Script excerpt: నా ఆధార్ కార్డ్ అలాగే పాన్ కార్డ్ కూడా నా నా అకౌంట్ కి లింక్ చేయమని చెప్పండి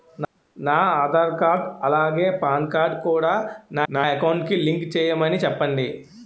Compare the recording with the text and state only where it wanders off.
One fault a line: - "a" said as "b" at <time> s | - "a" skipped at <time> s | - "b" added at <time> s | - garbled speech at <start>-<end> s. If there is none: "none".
none